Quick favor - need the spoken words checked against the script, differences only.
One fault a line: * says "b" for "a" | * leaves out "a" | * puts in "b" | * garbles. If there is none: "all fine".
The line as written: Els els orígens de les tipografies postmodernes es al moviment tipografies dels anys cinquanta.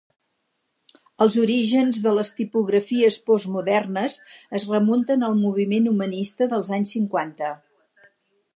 * leaves out "els"
* puts in "remunten"
* says "humanista" for "tipografies"